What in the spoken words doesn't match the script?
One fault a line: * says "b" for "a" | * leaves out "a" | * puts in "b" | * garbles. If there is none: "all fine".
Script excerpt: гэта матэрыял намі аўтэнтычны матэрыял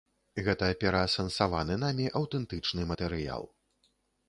* says "пераасэнсаваны" for "матэрыял"